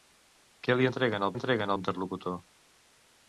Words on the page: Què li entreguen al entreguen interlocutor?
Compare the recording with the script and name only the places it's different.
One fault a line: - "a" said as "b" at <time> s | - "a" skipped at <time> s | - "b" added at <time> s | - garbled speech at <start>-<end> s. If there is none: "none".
none